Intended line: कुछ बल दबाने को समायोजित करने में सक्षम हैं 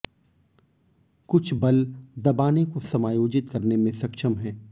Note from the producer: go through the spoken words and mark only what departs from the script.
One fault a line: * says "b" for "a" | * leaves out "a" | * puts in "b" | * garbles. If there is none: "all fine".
all fine